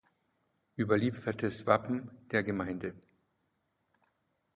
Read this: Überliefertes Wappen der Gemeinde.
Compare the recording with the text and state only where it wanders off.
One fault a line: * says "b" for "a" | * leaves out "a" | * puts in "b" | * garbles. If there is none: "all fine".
all fine